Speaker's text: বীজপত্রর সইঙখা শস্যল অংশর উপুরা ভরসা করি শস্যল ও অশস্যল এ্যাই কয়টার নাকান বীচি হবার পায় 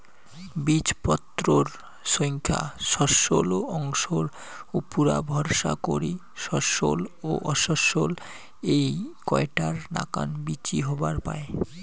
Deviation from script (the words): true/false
false